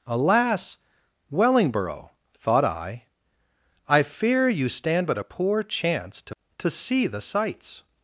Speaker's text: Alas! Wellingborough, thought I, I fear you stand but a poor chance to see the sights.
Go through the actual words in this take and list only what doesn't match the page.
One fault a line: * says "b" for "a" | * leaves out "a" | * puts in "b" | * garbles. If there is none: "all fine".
* puts in "to"